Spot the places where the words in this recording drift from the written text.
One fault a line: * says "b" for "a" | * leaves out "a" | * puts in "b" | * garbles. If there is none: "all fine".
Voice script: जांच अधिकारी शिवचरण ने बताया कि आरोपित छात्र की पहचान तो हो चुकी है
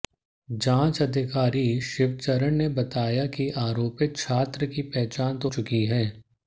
* leaves out "हो"